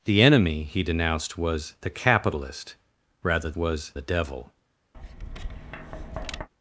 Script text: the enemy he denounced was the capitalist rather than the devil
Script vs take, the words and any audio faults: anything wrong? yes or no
yes